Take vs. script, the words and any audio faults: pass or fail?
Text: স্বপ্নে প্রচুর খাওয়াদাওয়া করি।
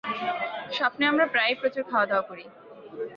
fail